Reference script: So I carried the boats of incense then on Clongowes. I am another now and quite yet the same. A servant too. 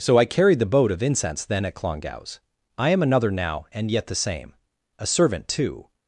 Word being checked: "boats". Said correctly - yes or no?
no